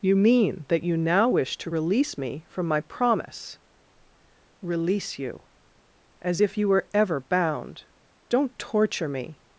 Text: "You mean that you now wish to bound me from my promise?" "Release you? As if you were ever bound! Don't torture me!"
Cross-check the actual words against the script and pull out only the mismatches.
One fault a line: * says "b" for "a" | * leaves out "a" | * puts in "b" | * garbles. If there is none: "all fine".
* says "release" for "bound"